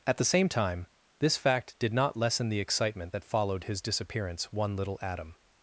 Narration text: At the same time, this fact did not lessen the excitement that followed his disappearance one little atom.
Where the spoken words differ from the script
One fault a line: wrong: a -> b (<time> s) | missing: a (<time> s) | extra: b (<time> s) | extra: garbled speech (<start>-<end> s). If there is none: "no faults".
no faults